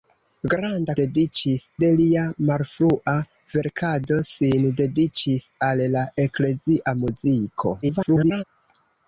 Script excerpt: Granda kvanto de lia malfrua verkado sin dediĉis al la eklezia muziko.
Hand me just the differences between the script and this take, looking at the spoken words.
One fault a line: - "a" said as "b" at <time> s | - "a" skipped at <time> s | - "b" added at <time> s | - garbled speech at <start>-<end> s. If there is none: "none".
- "kvanto" said as "dediĉis" at 1.0 s
- garbled speech at 7.8-8.4 s